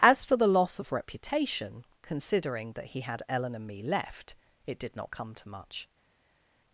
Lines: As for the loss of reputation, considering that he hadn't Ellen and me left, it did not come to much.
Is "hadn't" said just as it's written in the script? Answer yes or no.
no